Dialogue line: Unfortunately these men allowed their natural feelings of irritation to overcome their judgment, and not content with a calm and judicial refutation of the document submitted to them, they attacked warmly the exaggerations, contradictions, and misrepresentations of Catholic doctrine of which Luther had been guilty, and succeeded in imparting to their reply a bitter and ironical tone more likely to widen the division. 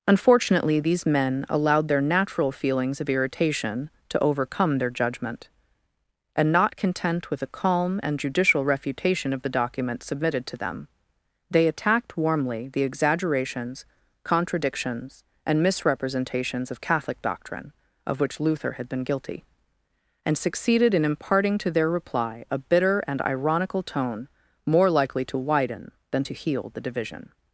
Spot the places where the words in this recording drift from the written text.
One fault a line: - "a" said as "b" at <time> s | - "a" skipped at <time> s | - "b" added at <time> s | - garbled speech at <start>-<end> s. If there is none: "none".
- "than to heal" added at 26.1 s